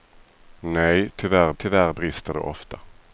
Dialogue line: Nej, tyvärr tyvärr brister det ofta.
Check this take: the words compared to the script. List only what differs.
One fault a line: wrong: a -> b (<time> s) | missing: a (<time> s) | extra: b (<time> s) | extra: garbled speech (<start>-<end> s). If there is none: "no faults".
no faults